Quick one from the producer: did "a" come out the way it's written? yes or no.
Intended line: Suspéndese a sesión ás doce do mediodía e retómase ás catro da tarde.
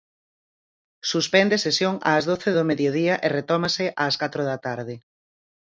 no